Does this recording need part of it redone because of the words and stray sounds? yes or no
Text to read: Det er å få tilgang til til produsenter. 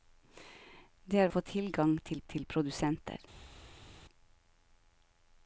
no